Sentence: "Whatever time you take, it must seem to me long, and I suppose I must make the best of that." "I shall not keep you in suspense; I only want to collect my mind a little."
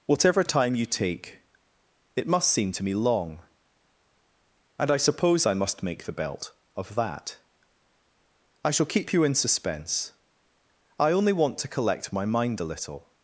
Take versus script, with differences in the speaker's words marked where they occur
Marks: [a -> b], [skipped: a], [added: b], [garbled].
"Whatever time you take, it must seem to me long, and I suppose I must make the [best -> belt] of that." "I shall [skipped: not] keep you in suspense; I only want to collect my mind a little."